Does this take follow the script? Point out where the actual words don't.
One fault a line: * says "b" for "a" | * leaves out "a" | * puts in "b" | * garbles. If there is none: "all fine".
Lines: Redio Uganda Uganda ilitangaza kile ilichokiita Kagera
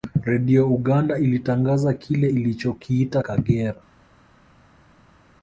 * leaves out "Uganda"